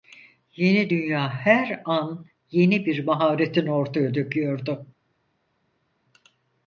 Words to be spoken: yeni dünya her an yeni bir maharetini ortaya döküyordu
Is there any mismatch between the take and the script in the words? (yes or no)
no